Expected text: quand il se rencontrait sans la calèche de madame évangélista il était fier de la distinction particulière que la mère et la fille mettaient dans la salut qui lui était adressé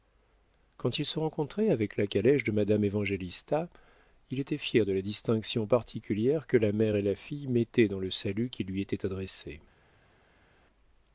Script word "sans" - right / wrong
wrong